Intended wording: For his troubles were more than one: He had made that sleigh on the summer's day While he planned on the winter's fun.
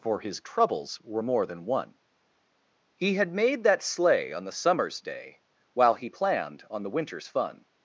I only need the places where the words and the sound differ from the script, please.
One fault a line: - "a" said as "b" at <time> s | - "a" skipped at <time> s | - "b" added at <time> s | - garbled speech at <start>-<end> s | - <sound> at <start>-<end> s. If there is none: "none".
none